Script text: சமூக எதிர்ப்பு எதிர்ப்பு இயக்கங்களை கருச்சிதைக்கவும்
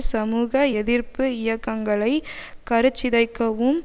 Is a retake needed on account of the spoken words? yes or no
yes